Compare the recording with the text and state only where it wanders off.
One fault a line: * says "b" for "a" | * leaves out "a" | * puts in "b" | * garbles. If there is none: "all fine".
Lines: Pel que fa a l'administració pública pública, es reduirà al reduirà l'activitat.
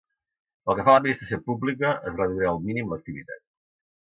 * leaves out "pública"
* says "mínim" for "reduirà"